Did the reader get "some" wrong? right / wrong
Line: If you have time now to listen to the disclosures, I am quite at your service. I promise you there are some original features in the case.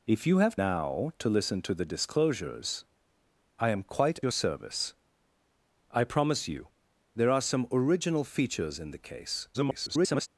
right